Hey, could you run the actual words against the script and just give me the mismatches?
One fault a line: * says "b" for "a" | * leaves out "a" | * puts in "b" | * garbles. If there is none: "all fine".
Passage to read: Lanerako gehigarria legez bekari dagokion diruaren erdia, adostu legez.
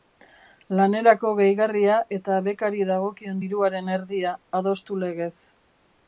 * says "eta" for "legez"